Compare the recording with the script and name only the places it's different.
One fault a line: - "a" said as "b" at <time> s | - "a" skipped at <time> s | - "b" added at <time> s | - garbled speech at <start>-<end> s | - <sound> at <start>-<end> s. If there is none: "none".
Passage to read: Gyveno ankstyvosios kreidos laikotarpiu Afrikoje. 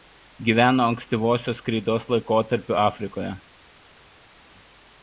none